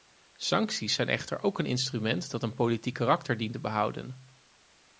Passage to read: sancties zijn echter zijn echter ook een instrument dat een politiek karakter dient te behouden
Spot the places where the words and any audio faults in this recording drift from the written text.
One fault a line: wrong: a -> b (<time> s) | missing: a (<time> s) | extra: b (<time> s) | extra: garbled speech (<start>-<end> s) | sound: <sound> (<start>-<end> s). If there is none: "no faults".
missing: zijn echter (1.4 s)